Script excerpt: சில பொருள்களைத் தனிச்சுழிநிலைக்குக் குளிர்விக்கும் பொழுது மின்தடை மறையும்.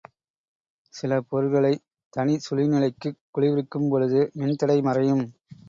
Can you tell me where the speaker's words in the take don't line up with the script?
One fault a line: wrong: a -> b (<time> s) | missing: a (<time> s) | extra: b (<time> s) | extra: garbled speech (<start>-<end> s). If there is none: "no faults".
no faults